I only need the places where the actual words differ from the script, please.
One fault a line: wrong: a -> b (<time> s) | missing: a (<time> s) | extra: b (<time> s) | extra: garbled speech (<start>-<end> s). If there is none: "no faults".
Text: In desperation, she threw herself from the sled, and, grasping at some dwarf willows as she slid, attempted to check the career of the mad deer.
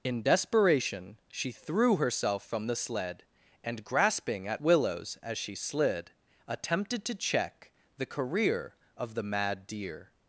missing: some dwarf (4.6 s)